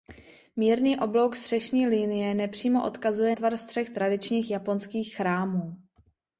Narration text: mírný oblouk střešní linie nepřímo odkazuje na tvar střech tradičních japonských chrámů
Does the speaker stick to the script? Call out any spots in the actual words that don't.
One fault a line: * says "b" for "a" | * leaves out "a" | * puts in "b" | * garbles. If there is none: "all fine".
* leaves out "na"